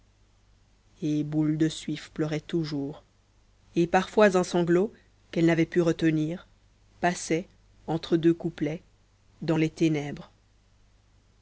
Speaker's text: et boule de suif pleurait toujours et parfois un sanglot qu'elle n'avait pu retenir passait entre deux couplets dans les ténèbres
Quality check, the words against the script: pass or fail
pass